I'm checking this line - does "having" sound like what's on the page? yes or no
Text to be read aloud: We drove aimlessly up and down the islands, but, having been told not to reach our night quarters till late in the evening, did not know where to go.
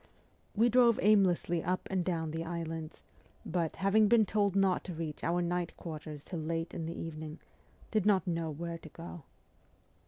yes